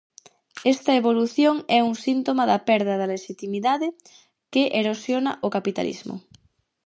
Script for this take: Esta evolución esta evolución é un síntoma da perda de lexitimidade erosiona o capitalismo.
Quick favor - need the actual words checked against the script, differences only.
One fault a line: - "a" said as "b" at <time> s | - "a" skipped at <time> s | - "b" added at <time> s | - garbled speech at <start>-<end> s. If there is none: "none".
- "esta evolución" skipped at 1.6 s
- "que" added at 4.5 s